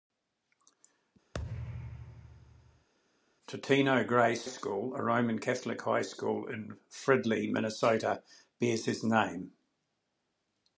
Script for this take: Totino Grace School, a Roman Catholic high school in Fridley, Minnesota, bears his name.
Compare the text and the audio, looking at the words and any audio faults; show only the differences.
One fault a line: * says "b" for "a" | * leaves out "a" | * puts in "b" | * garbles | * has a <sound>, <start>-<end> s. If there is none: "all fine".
* has a thud, 1.3-2.9 s